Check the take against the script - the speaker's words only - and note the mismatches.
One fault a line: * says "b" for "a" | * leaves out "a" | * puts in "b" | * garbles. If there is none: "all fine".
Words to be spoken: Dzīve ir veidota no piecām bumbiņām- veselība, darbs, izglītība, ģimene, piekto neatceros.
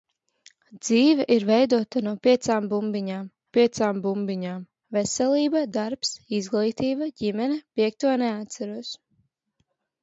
* puts in "piecām bumbiņām"